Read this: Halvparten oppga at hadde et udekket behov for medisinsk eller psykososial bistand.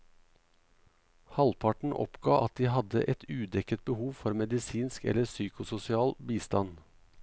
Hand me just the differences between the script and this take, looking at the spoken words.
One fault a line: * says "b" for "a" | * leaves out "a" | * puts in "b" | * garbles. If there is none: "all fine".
* puts in "de"